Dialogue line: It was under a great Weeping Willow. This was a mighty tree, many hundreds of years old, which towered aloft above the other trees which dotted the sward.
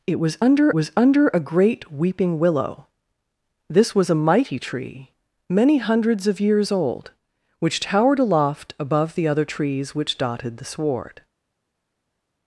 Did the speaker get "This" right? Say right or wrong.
right